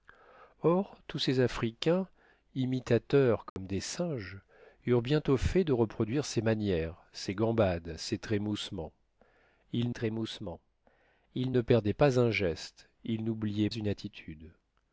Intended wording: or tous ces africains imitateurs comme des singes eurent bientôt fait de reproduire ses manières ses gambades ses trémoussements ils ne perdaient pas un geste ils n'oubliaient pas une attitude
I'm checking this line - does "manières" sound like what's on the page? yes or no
yes